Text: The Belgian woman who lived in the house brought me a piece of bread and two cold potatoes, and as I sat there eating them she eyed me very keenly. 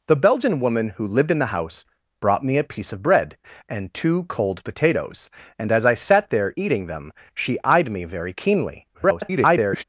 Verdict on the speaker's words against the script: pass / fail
fail